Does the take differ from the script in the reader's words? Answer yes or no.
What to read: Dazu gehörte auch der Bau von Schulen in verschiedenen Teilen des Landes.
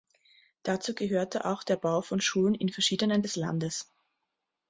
yes